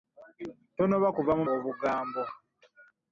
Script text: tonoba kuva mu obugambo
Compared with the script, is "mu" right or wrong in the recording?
right